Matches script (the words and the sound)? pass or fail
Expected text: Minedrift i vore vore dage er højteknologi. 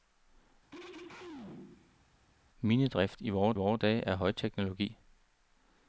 fail